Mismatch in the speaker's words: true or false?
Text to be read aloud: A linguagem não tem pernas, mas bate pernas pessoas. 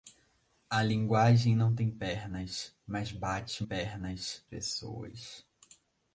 false